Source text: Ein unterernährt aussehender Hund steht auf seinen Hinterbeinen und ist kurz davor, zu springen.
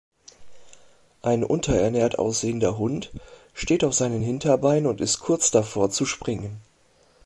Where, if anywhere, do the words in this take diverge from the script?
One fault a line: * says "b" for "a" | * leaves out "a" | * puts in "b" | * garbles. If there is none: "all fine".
all fine